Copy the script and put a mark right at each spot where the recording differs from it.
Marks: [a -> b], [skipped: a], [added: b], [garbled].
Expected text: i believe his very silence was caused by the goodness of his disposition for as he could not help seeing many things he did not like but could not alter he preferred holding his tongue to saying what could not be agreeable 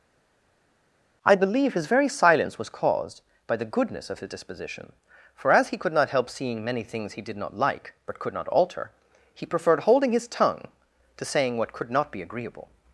i believe his very silence was caused by the goodness of his disposition for as he could not help seeing many things he did not like but could not alter he preferred holding his tongue to saying what could not be agreeable